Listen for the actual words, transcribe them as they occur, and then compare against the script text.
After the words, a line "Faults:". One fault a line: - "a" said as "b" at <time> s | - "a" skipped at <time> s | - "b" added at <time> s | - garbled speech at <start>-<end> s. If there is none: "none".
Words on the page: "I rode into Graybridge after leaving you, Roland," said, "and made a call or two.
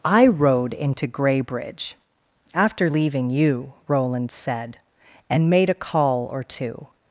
"I rode into Graybridge after leaving you, Roland," said, "and made a call or two.
Faults:
none